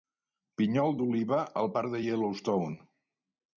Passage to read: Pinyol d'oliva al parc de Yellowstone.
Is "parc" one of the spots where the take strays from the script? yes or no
no